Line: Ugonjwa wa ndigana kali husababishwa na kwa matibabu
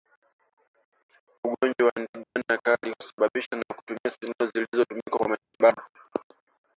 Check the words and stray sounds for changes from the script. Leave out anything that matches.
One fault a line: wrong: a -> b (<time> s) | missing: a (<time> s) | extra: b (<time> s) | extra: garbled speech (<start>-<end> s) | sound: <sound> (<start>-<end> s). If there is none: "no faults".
sound: dropout (2.2-2.4 s)
extra: kutumia sindano zilizotumika (3.8 s)
sound: dropout (5.4-5.5 s)